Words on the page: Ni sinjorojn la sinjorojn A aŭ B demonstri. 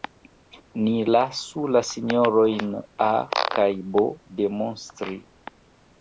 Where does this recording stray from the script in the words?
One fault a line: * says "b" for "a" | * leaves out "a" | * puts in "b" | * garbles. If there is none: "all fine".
* says "lasu" for "sinjorojn"
* says "kaj" for "aŭ"